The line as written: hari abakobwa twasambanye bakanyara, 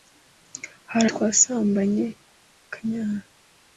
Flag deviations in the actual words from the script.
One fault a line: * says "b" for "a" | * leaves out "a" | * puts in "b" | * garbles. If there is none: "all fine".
* leaves out "abakobwa"